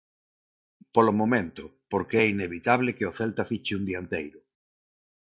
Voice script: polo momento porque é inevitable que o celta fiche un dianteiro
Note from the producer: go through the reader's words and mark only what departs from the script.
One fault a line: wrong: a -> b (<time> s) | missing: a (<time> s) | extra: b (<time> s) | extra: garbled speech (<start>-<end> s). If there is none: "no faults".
no faults